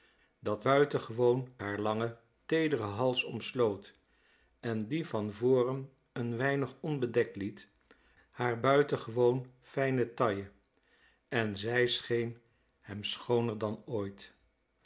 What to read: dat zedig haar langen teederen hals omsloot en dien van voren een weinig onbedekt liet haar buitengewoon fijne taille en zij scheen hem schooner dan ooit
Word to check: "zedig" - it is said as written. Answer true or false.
false